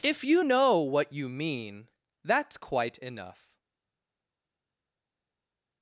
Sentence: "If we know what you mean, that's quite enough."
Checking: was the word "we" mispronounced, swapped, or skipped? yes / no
yes